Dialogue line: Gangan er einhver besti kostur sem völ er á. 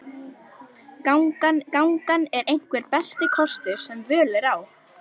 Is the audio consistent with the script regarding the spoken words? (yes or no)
no